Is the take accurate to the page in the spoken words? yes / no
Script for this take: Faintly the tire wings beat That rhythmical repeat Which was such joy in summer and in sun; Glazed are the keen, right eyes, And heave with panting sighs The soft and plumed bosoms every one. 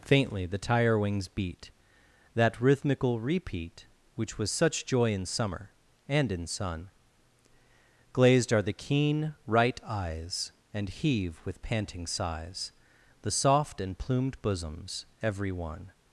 yes